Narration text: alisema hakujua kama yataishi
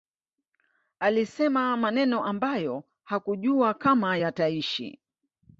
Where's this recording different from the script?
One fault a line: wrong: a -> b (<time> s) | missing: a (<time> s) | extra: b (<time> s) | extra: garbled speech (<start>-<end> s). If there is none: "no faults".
extra: maneno ambayo (1.8 s)